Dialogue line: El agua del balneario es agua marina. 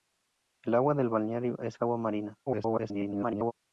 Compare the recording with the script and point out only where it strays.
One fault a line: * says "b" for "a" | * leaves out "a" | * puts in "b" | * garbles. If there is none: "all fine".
* garbles